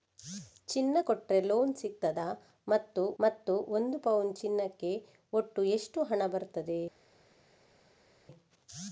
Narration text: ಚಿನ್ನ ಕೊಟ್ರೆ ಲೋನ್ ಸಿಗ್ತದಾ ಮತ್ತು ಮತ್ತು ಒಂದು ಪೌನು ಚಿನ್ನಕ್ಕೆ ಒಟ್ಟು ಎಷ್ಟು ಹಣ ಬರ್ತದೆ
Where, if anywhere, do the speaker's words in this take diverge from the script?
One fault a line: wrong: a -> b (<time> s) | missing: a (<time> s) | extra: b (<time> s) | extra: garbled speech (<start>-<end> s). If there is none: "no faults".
no faults